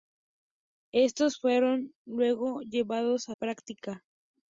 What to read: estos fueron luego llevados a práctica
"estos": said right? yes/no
yes